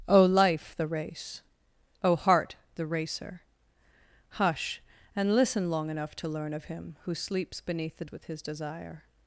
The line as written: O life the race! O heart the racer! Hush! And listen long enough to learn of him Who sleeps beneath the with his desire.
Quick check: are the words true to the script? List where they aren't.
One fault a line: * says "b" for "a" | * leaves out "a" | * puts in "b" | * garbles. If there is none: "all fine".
all fine